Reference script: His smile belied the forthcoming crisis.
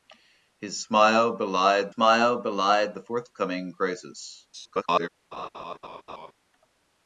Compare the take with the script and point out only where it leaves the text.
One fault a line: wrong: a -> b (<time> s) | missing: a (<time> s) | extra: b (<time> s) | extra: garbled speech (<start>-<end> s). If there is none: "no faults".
extra: smile belied (1.9 s)
extra: garbled speech (4.5-5.1 s)